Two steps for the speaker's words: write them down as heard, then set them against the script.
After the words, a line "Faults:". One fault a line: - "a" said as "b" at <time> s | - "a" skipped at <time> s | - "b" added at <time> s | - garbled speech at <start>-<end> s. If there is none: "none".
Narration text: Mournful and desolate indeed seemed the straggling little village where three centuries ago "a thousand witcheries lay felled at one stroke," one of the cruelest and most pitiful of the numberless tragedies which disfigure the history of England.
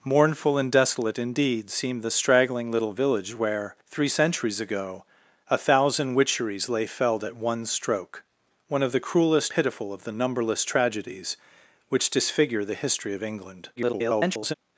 Mournful and desolate indeed seemed the straggling little village where three centuries ago "a thousand witcheries lay felled at one stroke," one of the cruelest pitiful of the numberless tragedies which disfigure the history of England. [garbled]
Faults:
- "and most" skipped at 9.5 s
- garbled speech at 13.8-14.5 s